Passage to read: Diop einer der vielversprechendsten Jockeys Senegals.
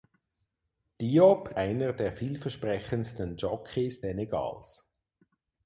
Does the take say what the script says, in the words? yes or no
yes